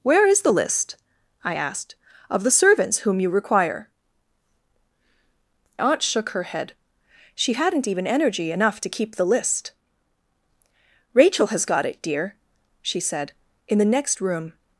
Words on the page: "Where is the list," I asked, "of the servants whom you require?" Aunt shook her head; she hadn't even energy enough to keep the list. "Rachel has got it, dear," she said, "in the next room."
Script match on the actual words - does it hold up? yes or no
yes